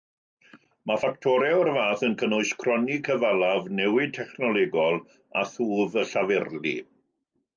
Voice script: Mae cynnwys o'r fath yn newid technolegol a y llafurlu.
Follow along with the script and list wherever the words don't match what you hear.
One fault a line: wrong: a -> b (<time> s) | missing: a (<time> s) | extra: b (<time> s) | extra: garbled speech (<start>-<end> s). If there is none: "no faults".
wrong: cynnwys -> ffactorau (1.0 s)
extra: cynnwys cronni cyfalaf (2.2 s)
extra: thwf (5.5 s)